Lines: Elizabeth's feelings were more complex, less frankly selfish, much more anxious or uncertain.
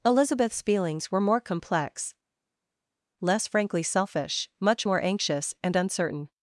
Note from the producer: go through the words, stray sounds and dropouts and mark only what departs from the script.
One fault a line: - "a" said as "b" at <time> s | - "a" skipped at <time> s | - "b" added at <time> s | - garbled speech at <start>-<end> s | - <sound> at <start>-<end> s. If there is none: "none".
- "or" said as "and" at 5.6 s